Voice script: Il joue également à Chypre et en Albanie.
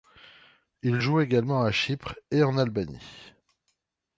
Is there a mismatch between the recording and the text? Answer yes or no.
no